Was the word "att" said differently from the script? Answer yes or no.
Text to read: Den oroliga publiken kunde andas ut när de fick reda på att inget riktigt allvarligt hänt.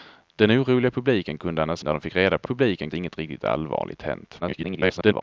yes